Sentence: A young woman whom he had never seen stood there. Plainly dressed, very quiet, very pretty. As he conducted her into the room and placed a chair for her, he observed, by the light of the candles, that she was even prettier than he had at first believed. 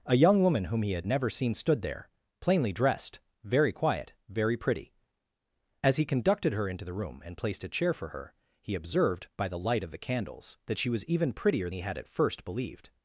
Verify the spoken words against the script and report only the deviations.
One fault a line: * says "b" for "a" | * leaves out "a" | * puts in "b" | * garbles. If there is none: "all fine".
* leaves out "than"